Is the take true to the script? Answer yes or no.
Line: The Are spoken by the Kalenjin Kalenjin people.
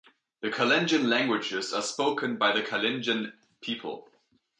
no